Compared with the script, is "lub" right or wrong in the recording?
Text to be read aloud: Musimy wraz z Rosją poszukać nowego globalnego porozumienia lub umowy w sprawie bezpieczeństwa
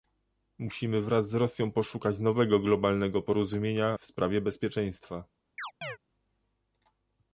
wrong